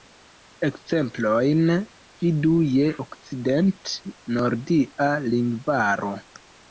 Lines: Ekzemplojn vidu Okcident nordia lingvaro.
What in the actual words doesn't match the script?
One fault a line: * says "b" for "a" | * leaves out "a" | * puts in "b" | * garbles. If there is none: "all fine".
* puts in "je"